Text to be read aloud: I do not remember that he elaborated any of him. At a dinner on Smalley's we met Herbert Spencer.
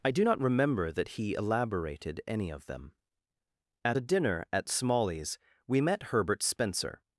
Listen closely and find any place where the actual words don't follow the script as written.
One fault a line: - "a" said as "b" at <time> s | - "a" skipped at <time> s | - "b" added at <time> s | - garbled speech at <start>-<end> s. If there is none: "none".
- "him" said as "them" at 2.7 s
- "on" said as "at" at 4.5 s